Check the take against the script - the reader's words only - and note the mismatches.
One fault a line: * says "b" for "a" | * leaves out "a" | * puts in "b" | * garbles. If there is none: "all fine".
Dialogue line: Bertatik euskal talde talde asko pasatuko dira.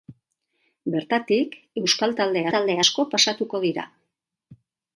all fine